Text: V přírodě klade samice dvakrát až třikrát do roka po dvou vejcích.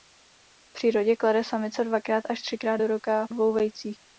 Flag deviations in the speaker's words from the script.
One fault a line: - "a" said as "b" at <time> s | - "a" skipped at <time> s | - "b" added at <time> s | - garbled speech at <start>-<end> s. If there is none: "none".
- "po" skipped at 3.3 s